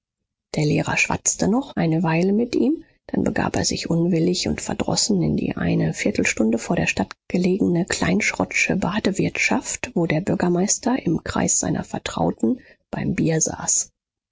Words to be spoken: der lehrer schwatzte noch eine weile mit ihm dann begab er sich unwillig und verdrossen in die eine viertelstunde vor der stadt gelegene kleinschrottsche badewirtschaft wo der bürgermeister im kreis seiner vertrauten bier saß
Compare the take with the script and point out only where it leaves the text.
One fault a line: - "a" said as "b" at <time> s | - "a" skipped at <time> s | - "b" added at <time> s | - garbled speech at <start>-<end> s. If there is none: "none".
- "beim" added at 12.9 s